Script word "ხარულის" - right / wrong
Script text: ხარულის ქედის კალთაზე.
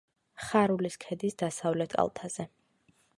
right